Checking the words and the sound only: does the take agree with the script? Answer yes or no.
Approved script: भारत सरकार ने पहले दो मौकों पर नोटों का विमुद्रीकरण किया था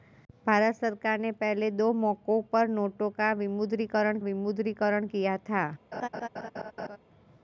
no